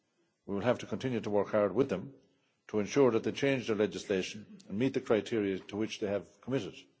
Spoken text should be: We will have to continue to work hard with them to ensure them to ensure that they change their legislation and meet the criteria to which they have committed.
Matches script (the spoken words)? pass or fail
fail